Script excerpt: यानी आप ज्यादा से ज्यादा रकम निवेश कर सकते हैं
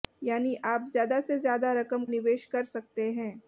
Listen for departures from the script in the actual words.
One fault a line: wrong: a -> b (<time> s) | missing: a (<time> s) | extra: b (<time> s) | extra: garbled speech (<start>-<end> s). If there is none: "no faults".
no faults